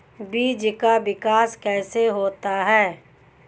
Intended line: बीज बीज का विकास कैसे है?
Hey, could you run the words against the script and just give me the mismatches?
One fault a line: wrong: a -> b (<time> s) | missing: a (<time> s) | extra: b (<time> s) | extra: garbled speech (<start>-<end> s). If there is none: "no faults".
missing: बीज (0.7 s)
extra: होता (2.1 s)